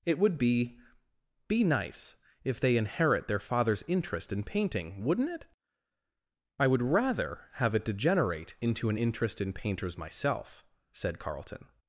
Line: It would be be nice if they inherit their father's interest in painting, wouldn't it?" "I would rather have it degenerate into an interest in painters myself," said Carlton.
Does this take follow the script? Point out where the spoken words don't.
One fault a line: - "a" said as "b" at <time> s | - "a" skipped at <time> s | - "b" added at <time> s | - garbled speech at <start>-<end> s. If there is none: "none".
none